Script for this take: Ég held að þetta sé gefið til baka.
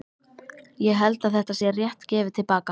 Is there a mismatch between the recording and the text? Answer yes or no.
yes